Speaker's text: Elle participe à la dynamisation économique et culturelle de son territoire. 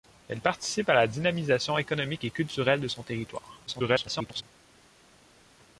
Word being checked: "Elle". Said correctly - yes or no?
yes